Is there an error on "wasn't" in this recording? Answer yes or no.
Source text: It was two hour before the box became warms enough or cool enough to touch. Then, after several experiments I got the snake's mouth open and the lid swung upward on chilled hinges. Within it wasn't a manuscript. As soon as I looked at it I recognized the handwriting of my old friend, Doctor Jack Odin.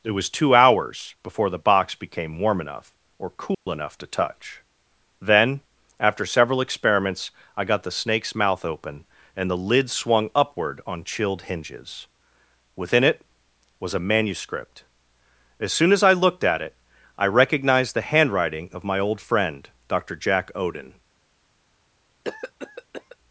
yes